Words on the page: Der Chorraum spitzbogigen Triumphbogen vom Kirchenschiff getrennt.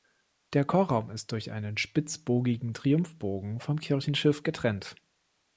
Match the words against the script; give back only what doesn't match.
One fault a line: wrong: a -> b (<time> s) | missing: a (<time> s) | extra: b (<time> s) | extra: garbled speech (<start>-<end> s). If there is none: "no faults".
extra: ist durch einen (1.1 s)